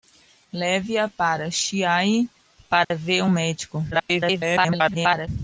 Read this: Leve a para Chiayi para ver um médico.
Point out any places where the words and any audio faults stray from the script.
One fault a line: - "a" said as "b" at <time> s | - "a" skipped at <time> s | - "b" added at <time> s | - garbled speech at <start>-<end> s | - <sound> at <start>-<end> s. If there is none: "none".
- dropout at 2.8-2.9 s
- garbled speech at 3.9-5.3 s